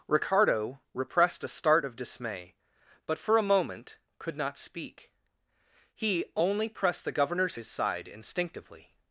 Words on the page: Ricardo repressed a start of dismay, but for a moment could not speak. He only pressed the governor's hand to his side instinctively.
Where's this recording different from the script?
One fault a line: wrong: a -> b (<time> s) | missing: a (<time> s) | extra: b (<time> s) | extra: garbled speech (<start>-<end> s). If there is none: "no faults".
missing: hand to (7.6 s)